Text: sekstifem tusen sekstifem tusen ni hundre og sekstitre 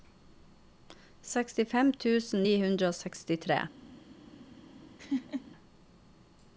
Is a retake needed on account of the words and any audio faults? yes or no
yes